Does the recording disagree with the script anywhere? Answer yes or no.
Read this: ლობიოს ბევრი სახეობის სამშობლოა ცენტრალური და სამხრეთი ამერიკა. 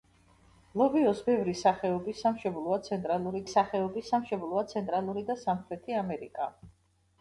yes